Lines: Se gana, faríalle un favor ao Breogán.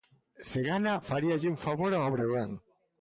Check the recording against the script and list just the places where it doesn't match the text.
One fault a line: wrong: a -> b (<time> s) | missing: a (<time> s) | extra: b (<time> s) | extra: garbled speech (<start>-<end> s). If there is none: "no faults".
no faults